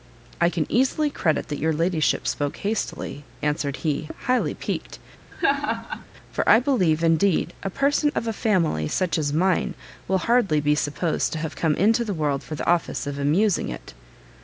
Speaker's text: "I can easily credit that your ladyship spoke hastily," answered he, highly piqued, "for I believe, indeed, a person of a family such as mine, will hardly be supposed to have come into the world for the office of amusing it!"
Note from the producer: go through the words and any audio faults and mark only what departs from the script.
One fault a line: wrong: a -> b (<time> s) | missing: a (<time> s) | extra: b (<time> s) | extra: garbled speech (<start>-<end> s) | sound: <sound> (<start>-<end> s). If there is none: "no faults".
sound: laugh (5.3-6.1 s)